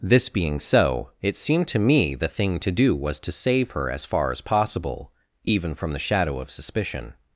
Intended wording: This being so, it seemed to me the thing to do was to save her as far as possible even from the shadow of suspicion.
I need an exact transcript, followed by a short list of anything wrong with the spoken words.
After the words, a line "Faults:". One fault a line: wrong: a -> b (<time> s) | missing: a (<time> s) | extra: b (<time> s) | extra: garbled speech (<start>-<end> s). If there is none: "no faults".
This being so, it seemed to me the thing to do was to save her as far as possible even from the shadow of suspicion.
Faults:
no faults